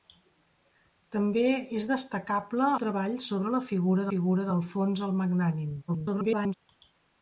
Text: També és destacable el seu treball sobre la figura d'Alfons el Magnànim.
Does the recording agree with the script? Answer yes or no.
no